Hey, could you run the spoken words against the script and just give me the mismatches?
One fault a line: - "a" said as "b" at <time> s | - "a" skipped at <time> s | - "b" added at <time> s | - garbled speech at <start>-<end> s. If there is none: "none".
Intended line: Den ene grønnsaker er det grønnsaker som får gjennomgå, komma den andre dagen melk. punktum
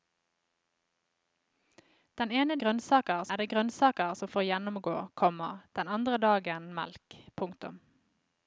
none